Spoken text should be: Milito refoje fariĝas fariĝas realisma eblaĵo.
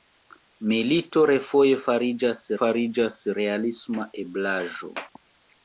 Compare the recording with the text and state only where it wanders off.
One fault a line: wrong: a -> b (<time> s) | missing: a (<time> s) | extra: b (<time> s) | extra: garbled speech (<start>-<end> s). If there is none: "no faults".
no faults